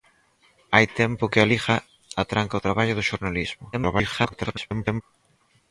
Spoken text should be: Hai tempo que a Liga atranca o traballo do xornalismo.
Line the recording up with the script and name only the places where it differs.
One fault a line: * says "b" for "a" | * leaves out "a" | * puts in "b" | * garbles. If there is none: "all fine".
* garbles